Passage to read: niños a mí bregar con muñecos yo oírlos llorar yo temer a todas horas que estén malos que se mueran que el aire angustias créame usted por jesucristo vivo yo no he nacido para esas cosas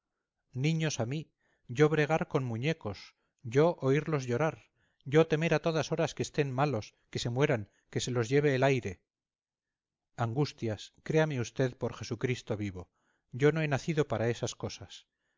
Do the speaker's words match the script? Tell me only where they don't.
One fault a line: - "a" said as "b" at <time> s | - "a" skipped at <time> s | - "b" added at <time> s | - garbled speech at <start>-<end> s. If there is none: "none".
- "yo" added at 1.7 s
- "se los lleve" added at 8.0 s